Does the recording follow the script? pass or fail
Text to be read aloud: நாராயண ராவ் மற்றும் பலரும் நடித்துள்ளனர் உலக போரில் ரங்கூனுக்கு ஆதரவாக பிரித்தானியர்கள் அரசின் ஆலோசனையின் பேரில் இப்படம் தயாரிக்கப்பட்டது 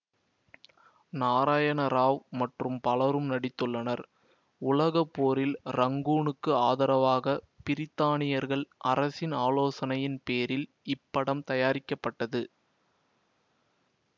pass